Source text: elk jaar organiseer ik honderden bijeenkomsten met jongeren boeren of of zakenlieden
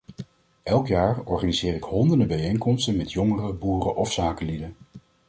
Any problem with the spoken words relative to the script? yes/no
yes